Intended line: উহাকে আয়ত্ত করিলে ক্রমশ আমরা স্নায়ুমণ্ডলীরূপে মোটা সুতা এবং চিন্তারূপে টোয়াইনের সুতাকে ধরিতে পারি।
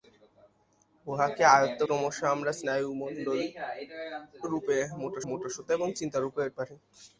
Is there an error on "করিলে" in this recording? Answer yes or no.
yes